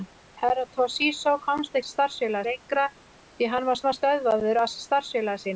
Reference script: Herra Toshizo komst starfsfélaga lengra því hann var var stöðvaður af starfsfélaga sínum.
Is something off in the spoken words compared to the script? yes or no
no